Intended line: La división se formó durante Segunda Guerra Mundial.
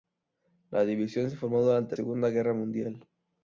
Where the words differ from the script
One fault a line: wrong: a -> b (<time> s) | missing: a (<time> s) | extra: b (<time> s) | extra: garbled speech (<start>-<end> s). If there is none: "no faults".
no faults